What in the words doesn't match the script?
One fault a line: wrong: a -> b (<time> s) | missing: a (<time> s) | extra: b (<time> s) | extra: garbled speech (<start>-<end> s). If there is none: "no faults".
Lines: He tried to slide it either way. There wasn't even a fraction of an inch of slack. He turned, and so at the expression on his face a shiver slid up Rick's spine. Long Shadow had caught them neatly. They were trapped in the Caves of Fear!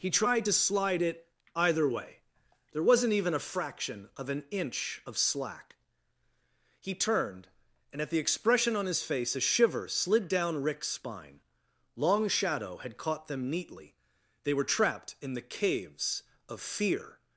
missing: so (8.0 s)
wrong: up -> down (10.3 s)